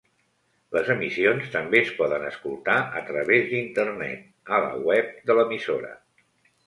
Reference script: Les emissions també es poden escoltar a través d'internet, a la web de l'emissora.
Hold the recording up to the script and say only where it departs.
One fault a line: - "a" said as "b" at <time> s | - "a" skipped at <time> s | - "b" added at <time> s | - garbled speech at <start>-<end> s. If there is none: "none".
none